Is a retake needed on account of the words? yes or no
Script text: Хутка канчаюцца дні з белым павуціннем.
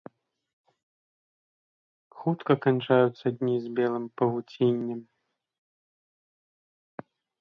no